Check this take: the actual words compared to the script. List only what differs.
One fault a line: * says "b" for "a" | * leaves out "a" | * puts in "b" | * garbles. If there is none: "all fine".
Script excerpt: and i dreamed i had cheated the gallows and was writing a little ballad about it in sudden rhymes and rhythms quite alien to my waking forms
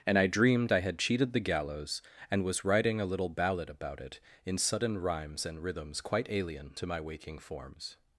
all fine